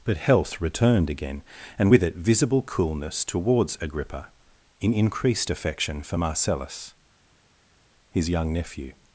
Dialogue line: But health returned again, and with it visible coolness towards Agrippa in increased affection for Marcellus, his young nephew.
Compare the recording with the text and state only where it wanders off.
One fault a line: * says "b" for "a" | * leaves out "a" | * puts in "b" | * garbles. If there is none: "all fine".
all fine